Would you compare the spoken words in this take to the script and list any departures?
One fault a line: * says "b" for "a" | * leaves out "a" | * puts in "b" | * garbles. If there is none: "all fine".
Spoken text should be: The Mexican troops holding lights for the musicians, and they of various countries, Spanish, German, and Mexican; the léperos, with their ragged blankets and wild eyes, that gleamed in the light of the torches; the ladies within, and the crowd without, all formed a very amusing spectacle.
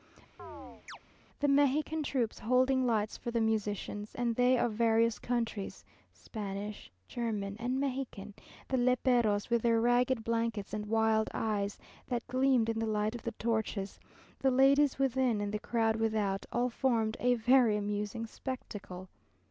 all fine